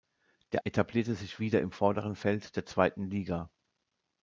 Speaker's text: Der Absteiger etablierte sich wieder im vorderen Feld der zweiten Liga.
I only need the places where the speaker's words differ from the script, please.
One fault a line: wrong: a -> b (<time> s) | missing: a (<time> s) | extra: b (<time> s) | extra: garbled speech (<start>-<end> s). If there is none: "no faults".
missing: Absteiger (0.6 s)